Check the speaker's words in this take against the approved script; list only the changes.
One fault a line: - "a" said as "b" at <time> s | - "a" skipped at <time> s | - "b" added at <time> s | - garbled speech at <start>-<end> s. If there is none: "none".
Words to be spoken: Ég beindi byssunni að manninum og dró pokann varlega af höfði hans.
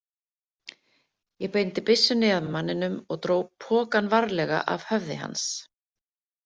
- "að" added at 2.5 s